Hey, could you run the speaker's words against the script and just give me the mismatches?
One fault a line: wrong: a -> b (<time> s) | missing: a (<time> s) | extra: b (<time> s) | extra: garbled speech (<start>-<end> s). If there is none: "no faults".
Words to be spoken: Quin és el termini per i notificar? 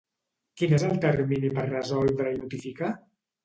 extra: resoldre (1.7 s)